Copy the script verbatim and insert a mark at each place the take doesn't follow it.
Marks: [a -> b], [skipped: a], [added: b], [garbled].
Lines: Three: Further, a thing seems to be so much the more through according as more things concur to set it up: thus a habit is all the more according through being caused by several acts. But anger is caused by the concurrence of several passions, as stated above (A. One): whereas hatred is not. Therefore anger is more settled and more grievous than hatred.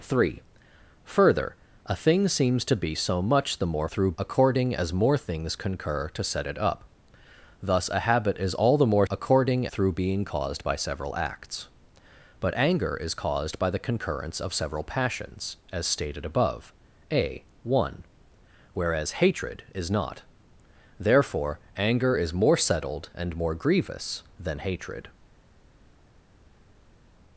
Three: Further, a thing seems to be so much the more through according as more things concur to set it up: thus a habit is all the more according through being caused by several acts. But anger is caused by the concurrence of several passions, as stated above (A. One): whereas hatred is not. Therefore anger is more settled and more grievous than hatred.